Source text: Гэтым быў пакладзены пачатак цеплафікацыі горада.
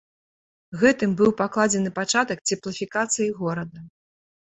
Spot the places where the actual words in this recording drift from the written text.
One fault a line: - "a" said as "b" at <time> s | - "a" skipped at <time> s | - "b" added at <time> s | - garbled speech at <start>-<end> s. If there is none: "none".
none